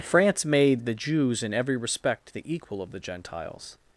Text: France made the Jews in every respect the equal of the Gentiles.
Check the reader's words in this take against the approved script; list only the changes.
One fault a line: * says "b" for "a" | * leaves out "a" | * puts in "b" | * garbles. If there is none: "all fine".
all fine